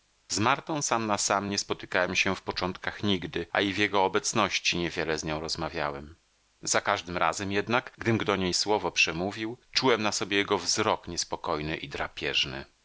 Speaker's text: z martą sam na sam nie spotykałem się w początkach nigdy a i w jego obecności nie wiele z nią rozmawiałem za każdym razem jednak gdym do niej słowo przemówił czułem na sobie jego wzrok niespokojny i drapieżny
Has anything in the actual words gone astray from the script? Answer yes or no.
no